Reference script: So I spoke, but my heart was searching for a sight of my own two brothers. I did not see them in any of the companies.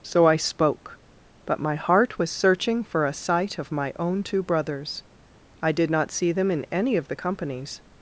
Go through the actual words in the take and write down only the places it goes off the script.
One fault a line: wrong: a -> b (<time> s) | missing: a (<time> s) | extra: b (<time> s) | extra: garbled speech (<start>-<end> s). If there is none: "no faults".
no faults